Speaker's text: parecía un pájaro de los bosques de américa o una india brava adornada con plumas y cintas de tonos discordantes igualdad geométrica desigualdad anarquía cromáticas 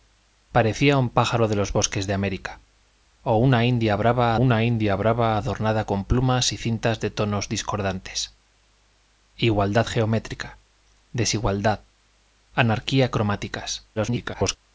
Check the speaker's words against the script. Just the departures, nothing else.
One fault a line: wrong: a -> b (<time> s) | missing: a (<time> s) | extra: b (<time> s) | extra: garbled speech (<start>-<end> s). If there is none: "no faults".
extra: una india brava (4.3 s)
extra: garbled speech (14.0-14.6 s)